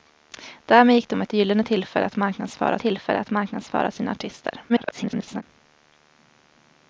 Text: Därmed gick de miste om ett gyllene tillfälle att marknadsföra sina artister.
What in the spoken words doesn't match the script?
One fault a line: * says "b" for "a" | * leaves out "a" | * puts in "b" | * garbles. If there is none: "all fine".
* leaves out "miste"
* puts in "tillfälle att marknadsföra"
* garbles